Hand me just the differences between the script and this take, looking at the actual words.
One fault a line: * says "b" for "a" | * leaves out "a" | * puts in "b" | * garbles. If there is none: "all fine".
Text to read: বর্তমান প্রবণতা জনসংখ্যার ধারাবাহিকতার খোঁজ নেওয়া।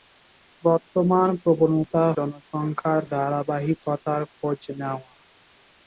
all fine